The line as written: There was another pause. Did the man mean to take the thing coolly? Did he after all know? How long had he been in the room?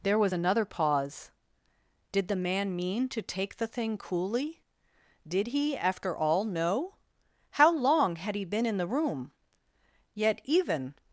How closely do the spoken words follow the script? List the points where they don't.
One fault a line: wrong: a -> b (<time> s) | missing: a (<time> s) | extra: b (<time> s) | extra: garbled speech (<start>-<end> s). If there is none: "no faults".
extra: Yet even (10.1 s)